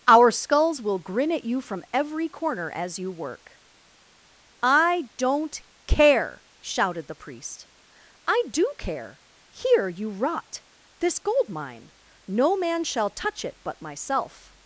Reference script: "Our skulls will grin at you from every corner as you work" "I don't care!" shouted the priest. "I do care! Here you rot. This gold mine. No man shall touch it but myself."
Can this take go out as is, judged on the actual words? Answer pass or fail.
pass